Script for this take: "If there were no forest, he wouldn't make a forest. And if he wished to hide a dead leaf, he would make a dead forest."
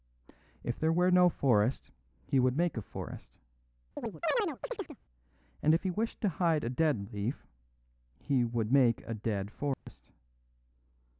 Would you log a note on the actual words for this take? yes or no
yes